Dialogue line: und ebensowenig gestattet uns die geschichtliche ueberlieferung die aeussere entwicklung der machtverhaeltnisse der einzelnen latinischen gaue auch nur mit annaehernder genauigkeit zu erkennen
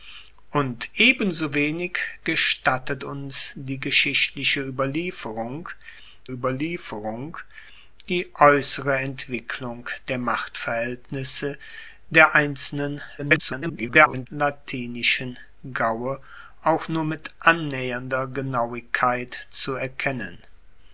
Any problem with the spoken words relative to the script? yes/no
yes